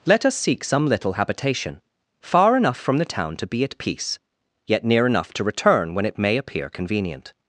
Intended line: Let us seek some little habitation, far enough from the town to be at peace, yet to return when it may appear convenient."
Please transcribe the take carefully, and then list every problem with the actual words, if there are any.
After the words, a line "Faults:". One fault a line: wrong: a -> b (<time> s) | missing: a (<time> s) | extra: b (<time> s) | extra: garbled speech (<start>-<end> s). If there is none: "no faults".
Let us seek some little habitation, far enough from the town to be at peace, yet near enough to return when it may appear convenient."
Faults:
extra: near enough (4.8 s)